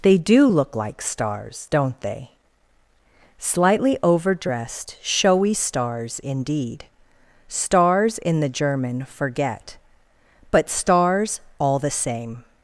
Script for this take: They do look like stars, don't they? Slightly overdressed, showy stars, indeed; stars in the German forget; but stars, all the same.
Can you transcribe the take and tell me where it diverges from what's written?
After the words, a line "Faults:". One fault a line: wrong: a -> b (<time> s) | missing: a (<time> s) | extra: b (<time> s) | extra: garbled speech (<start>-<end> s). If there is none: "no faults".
They do look like stars, don't they? Slightly overdressed, showy stars, indeed; stars in the German forget; but stars, all the same.
Faults:
no faults